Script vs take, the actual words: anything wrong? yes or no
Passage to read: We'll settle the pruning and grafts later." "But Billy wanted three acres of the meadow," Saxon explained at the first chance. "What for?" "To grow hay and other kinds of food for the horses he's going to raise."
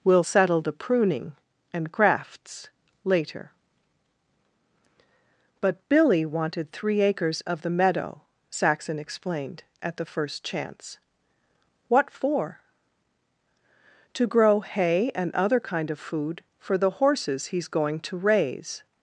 yes